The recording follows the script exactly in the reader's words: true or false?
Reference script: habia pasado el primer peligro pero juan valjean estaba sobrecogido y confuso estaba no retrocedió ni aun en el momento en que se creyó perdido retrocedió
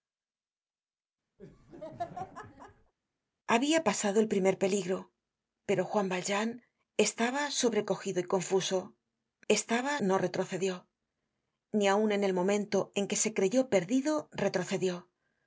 true